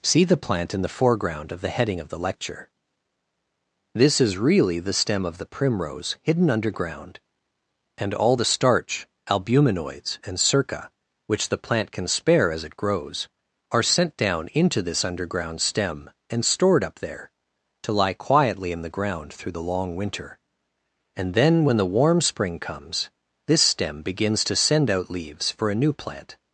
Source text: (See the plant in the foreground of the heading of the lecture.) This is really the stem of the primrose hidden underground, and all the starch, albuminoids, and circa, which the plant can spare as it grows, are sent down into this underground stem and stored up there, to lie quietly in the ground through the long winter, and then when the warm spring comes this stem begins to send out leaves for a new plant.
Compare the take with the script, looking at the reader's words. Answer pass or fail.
pass